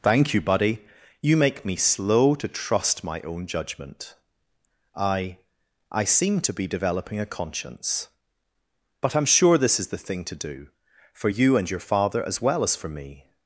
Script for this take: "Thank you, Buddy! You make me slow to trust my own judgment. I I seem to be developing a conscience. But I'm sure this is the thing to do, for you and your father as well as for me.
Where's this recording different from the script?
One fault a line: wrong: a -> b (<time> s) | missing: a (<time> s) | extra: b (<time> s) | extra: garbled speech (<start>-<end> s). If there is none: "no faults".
no faults